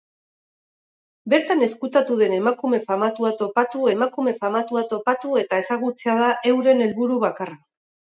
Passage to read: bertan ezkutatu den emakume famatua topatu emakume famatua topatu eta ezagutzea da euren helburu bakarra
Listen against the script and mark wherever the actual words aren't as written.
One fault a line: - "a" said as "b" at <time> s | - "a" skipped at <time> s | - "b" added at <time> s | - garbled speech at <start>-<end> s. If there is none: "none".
none